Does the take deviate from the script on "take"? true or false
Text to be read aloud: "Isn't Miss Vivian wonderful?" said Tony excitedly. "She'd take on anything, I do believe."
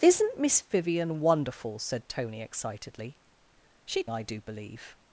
true